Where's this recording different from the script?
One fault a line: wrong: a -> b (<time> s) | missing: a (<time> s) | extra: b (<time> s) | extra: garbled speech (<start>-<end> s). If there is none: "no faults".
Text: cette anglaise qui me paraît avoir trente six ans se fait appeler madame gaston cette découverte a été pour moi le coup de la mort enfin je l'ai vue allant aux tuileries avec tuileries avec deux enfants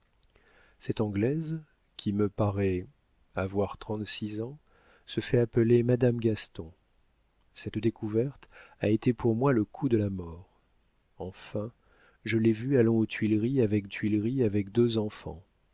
no faults